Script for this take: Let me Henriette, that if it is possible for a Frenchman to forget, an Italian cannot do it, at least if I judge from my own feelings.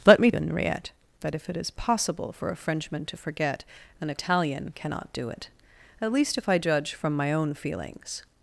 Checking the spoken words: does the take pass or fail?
pass